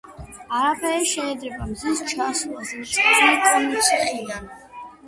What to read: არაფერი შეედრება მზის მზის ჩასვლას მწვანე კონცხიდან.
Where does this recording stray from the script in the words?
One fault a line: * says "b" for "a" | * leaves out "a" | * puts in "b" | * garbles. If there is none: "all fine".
* leaves out "მზის"